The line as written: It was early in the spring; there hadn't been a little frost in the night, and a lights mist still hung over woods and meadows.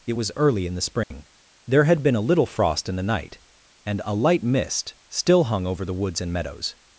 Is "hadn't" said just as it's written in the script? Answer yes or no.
no